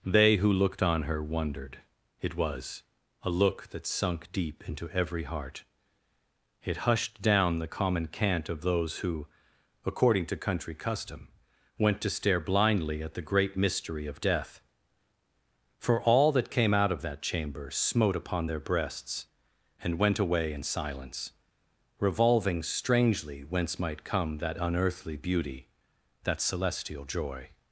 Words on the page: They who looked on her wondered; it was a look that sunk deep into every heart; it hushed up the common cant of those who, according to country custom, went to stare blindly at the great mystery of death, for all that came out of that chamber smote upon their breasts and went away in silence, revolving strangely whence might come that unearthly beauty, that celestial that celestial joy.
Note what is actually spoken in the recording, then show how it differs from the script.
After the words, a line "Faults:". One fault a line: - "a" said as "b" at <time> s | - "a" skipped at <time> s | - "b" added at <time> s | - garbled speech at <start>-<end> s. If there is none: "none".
They who looked on her wondered; it was a look that sunk deep into every heart; it hushed down the common cant of those who, according to country custom, went to stare blindly at the great mystery of death, for all that came out of that chamber smote upon their breasts and went away in silence, revolving strangely whence might come that unearthly beauty, that celestial joy.
Faults:
- "up" said as "down" at 7.2 s
- "that celestial" skipped at 27.1 s